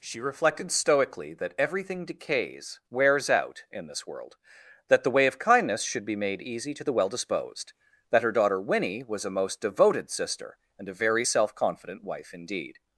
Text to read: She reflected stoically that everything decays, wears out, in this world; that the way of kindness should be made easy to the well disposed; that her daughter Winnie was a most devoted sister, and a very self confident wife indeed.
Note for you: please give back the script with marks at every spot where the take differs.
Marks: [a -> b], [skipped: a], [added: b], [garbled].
She reflected stoically that everything decays, wears out, in this world; that the way of kindness should be made easy to the well disposed; that her daughter Winnie was a most devoted sister, and a very self confident wife indeed.